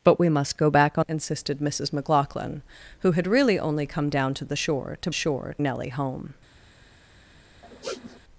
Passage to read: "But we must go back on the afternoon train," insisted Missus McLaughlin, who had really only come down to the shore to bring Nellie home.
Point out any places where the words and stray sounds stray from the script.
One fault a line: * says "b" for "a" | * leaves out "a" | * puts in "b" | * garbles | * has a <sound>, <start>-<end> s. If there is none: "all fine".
* leaves out "the afternoon train"
* says "shore" for "bring"
* has a sniff, 7.6-8.2 s